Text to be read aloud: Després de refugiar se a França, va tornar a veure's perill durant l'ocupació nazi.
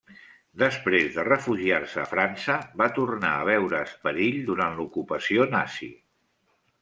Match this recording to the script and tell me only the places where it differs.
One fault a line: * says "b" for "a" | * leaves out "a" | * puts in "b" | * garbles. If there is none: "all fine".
all fine